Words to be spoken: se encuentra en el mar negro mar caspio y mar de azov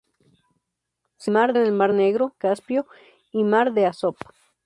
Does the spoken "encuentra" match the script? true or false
false